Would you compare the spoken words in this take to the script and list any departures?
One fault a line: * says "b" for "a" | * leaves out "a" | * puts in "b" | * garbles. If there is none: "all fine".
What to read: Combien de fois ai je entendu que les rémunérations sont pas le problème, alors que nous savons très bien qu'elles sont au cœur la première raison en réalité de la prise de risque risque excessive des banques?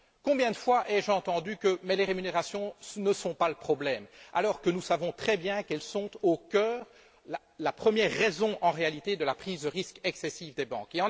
* puts in "ne"
* leaves out "risque"